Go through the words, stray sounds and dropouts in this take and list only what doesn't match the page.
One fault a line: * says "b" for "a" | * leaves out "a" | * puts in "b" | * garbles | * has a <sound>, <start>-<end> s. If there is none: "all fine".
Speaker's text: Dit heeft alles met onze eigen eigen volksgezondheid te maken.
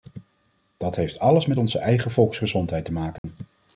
* says "Dat" for "Dit"
* leaves out "eigen"
* has a dropout, 3.2-3.2 s